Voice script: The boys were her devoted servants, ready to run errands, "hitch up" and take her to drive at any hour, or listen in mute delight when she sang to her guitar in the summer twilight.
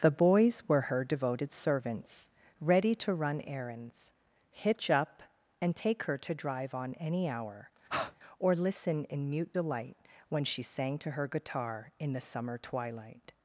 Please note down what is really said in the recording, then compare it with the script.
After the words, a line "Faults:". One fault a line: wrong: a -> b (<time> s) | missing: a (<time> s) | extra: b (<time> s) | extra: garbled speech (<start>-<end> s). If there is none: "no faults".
The boys were her devoted servants, ready to run errands, "hitch up" and take her to drive on any hour, or listen in mute delight when she sang to her guitar in the summer twilight.
Faults:
wrong: at -> on (6.7 s)